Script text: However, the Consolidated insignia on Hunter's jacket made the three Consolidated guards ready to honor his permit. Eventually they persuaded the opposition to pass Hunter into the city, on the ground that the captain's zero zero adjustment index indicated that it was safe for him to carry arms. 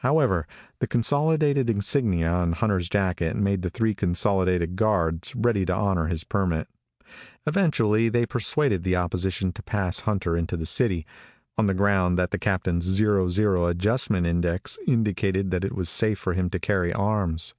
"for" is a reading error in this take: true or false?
false